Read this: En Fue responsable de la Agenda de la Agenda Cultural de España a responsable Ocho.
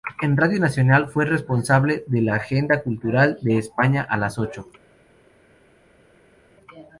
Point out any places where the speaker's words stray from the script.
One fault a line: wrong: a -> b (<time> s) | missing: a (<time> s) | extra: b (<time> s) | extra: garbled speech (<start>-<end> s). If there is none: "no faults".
extra: Radio Nacional (0.3 s)
missing: de la Agenda (2.8 s)
wrong: responsable -> las (4.2 s)